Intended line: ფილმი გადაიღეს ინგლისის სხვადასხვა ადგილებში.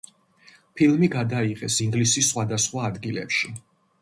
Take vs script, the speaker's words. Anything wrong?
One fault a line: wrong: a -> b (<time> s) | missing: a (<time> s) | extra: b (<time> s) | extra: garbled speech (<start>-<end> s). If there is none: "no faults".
no faults